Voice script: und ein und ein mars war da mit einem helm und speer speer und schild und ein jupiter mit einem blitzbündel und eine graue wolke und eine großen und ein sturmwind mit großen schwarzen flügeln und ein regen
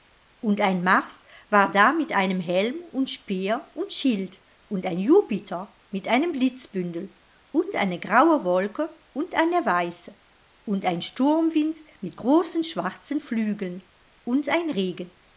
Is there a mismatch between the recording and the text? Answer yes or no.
yes